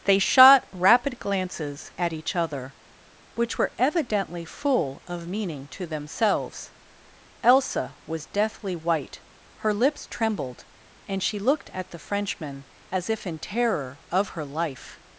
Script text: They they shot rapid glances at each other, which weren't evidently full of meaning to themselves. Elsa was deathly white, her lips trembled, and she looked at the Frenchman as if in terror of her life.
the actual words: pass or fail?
fail